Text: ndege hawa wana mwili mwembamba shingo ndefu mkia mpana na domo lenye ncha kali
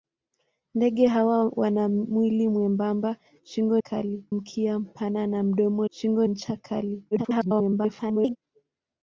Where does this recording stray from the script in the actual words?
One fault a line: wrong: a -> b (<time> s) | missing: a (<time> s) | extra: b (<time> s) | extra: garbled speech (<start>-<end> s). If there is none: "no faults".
wrong: ndefu -> kali (3.8 s)
wrong: lenye -> shingo (5.9 s)
extra: garbled speech (7.1-8.4 s)